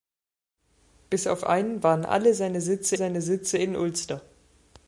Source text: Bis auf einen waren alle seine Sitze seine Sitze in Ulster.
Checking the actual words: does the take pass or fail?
pass